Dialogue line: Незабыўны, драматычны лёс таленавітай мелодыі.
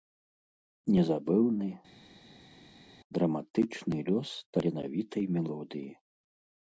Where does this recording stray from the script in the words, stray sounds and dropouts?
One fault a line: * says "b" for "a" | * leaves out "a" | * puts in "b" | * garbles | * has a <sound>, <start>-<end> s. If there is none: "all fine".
all fine